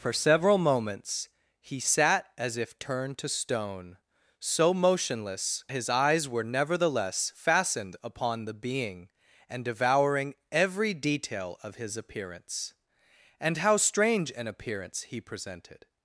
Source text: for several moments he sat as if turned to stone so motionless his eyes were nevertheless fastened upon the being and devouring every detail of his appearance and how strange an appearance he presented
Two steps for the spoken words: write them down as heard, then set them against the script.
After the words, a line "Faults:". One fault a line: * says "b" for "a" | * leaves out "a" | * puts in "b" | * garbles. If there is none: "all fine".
for several moments he sat as if turned to stone so motionless his eyes were nevertheless fastened upon the being and devouring every detail of his appearance and how strange an appearance he presented
Faults:
all fine